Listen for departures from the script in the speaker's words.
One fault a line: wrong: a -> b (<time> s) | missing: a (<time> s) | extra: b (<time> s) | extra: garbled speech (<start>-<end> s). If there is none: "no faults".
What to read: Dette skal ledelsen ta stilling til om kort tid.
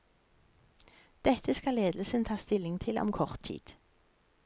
no faults